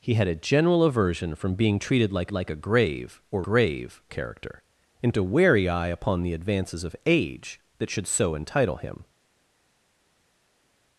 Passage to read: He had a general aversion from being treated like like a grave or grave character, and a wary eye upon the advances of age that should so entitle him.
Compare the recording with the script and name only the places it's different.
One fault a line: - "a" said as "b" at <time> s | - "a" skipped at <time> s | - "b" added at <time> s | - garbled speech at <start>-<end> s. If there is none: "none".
none